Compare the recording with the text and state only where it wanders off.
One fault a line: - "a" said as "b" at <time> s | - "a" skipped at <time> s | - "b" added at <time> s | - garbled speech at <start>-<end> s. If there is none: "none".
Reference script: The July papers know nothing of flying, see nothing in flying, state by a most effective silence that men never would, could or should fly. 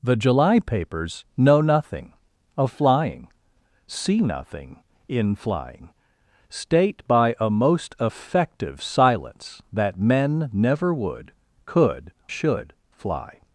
- "or" skipped at 12.1 s